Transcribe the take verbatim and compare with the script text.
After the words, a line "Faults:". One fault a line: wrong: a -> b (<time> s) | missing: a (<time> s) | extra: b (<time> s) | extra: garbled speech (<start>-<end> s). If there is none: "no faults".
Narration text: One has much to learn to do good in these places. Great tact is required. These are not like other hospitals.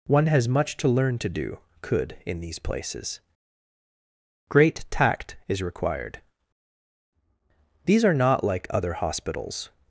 One has much to learn to do could in these places. Great tact is required. These are not like other hospitals.
Faults:
wrong: good -> could (1.8 s)